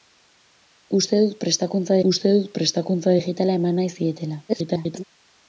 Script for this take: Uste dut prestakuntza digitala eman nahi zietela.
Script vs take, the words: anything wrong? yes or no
yes